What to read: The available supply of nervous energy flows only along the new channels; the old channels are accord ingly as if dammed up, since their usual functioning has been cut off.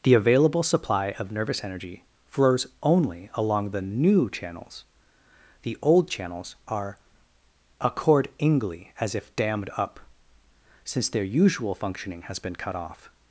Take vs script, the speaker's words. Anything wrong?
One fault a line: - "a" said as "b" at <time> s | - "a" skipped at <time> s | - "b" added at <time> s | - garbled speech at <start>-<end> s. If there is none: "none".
none